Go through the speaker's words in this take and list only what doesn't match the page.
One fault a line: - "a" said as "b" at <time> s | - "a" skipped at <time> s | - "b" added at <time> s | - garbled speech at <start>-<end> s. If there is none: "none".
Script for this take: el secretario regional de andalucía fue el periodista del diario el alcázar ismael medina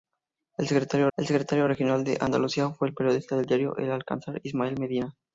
- "el secretario" added at 1.2 s